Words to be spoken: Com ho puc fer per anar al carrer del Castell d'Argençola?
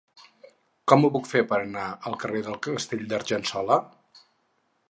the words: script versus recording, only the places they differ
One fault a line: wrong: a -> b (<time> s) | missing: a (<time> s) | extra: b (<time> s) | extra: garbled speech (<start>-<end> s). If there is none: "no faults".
no faults